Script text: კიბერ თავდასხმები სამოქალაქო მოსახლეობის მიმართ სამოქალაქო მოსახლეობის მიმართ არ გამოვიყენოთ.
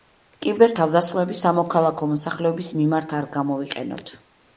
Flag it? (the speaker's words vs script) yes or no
yes